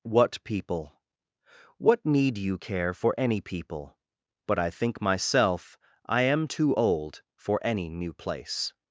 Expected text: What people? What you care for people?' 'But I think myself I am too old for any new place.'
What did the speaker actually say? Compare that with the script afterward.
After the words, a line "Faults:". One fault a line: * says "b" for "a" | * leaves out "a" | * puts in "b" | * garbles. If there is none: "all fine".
What people? What need you care for any people?' 'But I think myself I am too old for any new place.'
Faults:
* puts in "need"
* puts in "any"